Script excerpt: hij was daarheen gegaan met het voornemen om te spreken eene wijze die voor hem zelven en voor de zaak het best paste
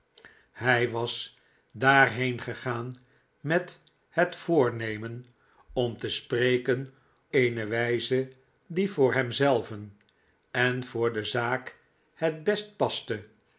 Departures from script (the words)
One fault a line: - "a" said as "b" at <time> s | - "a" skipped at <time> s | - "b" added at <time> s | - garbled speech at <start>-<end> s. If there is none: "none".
none